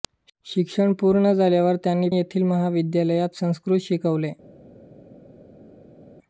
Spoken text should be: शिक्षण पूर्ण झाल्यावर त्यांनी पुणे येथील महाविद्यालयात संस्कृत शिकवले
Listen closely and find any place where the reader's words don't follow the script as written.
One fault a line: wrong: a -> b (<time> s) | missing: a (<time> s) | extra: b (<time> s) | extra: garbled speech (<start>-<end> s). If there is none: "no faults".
missing: पुणे (2.1 s)